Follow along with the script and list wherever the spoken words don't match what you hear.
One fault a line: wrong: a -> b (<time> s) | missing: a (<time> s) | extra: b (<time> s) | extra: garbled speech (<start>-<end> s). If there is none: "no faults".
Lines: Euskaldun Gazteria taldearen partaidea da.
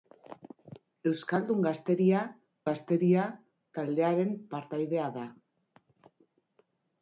extra: Gazteria (2.7 s)